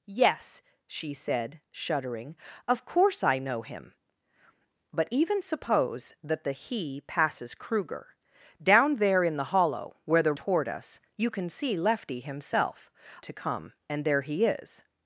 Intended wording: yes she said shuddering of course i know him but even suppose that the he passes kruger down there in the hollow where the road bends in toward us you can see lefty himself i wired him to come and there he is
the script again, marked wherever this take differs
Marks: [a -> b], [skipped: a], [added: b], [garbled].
yes she said shuddering of course i know him but even suppose that the he passes kruger down there in the hollow where the [skipped: road bends in] toward us you can see lefty himself [skipped: i wired him] to come and there he is